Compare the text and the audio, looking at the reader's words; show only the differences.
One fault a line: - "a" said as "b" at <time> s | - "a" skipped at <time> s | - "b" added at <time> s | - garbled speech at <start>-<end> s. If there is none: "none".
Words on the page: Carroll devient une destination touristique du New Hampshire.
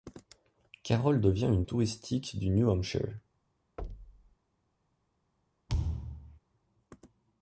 - "destination" skipped at 1.6 s